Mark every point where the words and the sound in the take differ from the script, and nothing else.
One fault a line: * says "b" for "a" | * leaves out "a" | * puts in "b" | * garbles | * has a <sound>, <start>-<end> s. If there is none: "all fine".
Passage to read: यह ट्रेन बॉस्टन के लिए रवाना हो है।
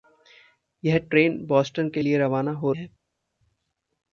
all fine